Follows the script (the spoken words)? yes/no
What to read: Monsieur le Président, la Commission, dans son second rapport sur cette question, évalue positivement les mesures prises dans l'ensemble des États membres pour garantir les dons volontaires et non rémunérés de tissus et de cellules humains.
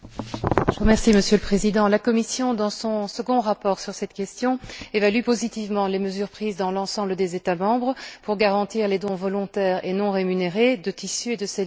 yes